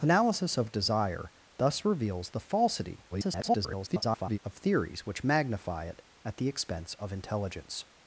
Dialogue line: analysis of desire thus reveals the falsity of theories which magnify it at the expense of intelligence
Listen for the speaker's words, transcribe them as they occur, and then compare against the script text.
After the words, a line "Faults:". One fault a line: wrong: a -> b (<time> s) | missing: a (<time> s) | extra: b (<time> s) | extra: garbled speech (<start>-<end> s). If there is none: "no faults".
analysis of desire thus reveals the falsity [garbled] of theories which magnify it at the expense of intelligence
Faults:
extra: garbled speech (3.1-4.4 s)